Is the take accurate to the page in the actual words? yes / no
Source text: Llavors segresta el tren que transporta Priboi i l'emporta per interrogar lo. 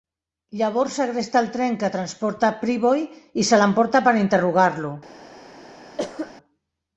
no